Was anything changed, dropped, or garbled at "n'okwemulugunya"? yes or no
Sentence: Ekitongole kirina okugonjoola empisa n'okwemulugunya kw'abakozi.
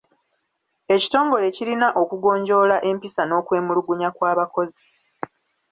no